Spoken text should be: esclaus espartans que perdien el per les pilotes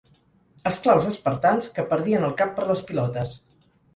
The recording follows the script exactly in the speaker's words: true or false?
false